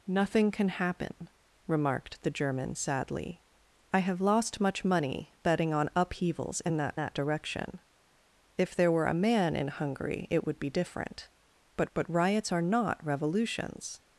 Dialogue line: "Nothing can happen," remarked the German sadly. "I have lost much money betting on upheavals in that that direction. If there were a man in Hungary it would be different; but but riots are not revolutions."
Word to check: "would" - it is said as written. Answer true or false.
true